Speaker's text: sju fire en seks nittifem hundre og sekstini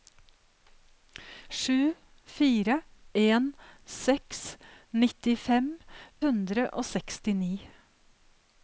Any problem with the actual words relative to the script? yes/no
no